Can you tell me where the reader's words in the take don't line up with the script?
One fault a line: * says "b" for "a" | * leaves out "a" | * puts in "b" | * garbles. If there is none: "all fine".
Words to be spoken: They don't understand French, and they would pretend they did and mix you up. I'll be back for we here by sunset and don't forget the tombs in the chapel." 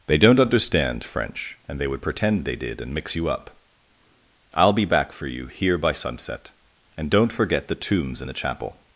* says "you" for "we"